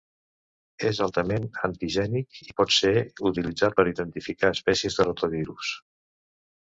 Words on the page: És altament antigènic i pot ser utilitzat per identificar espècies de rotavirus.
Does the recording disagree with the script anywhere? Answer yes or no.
no